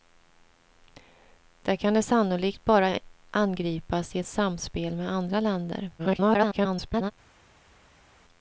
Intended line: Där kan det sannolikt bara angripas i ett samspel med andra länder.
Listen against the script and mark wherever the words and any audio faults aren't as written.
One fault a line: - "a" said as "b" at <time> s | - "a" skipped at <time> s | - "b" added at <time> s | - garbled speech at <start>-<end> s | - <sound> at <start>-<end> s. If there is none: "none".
- garbled speech at 6.0-7.1 s